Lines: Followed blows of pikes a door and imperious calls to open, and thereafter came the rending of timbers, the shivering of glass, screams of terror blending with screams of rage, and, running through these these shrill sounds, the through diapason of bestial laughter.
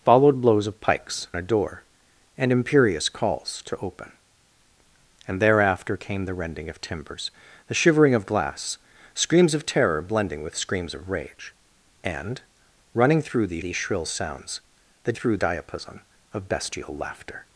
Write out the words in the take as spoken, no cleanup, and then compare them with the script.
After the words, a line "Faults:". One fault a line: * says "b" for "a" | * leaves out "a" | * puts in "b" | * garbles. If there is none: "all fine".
Followed blows of pikes a door and imperious calls to open, and thereafter came the rending of timbers, the shivering of glass, screams of terror blending with screams of rage, and, running through these these shrill sounds, the through diapason of bestial laughter.
Faults:
all fine